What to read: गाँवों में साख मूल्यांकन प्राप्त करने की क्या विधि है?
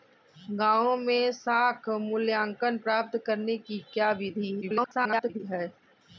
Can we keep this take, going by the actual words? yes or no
no